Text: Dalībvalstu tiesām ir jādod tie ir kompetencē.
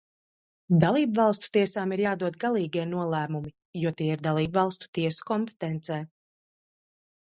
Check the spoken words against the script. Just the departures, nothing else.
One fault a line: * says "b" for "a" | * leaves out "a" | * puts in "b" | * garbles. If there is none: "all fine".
* puts in "galīgie nolēmumi jo"
* puts in "dalībvalstu tiesu"